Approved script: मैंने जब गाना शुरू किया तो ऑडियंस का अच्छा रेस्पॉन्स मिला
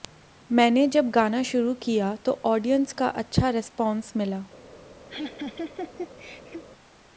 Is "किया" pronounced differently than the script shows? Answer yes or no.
no